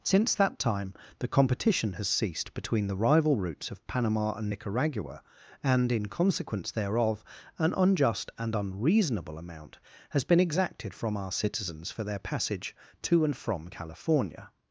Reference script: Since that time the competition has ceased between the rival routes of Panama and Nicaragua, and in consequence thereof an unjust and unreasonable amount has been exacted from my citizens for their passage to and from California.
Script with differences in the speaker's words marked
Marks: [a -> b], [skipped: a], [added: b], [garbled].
Since that time the competition has ceased between the rival routes of Panama and Nicaragua, and in consequence thereof an unjust and unreasonable amount has been exacted from [my -> our] citizens for their passage to and from California.